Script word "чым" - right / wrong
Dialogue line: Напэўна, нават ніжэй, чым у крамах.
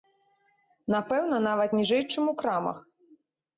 right